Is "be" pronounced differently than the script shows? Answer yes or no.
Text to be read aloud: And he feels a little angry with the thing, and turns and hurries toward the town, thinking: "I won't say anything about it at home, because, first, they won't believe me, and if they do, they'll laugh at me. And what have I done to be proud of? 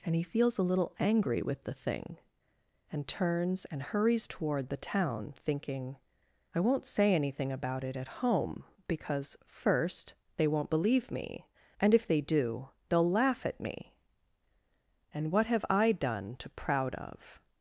yes